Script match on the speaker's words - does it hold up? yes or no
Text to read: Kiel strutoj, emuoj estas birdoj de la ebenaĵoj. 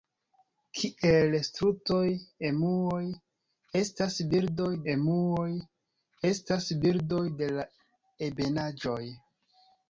no